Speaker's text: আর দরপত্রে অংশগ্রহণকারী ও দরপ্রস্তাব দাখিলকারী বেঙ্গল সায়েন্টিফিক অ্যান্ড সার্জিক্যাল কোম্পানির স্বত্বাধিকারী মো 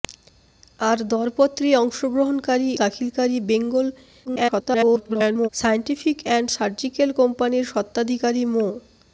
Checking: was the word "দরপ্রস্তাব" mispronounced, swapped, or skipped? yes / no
yes